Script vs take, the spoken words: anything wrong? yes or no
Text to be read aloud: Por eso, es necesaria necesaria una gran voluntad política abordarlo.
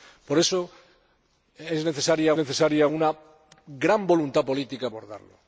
no